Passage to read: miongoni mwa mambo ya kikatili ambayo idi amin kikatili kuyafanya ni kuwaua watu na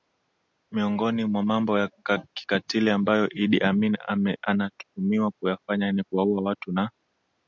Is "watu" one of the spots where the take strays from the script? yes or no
no